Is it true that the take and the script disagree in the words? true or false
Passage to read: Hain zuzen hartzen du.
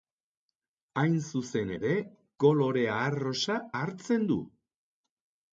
true